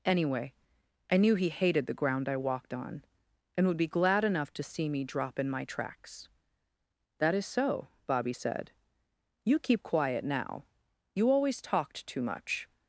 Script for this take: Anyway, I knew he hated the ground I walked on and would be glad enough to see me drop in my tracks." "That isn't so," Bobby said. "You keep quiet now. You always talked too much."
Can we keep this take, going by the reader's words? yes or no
no